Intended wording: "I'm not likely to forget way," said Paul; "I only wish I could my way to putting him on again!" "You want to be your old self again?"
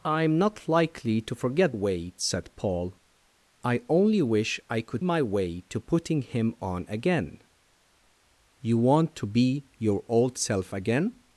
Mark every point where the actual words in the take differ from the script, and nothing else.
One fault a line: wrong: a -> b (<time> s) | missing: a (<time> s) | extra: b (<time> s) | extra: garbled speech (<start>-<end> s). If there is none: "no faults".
no faults